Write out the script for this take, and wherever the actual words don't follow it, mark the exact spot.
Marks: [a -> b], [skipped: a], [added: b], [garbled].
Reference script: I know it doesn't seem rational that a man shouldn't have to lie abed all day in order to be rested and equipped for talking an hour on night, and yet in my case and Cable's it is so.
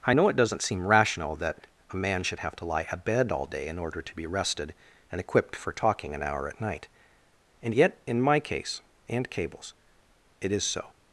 I know it doesn't seem rational that a man [shouldn't -> should] have to lie abed all day in order to be rested and equipped for talking an hour [on -> at] night, and yet in my case and Cable's it is so.